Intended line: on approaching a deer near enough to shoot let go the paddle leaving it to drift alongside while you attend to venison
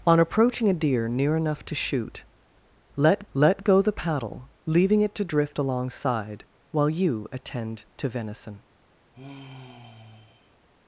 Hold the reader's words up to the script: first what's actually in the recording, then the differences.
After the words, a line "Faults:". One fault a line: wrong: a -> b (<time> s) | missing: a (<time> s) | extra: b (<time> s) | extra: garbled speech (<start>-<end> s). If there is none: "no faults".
on approaching a deer near enough to shoot let let go the paddle leaving it to drift alongside while you attend to venison
Faults:
extra: let (3.3 s)